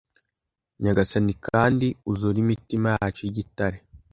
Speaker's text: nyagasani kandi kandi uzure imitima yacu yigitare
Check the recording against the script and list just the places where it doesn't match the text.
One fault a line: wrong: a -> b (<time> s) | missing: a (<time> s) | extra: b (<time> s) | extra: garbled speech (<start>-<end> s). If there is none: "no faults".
missing: kandi (1.9 s)